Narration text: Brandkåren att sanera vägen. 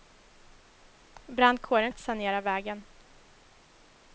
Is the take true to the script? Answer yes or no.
yes